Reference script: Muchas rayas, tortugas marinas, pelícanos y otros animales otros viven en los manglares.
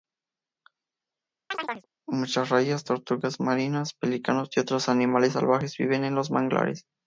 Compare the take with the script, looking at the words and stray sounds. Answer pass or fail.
fail